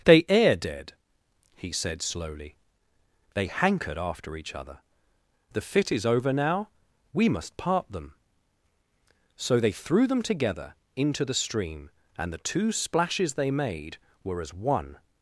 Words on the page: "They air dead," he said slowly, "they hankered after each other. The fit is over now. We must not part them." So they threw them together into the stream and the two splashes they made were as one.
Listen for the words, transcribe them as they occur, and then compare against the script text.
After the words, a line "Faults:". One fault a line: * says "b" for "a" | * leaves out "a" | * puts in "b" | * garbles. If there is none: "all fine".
"They air dead," he said slowly, "they hankered after each other. The fit is over now. We must part them." So they threw them together into the stream and the two splashes they made were as one.
Faults:
* leaves out "not"